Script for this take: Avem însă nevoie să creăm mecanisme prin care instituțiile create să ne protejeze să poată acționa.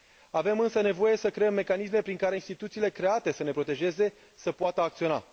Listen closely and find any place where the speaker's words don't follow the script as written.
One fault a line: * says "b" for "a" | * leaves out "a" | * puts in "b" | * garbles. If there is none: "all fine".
all fine